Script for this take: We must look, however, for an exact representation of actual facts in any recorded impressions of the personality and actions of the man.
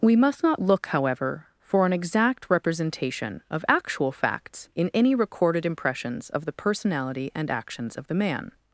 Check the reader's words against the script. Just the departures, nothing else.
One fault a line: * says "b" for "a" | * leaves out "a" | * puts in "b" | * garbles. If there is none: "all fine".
* puts in "not"